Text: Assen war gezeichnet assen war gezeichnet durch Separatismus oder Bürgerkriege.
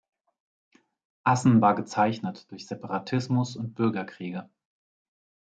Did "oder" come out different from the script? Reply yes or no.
yes